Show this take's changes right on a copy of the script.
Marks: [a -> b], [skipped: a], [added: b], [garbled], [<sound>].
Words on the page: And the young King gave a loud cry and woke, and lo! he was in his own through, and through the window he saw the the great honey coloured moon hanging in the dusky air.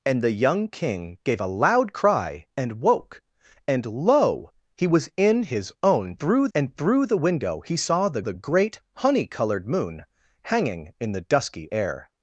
And the young King gave a loud cry and woke, and lo! he was in his own through, and through the window he saw the the great honey coloured moon hanging in the dusky air.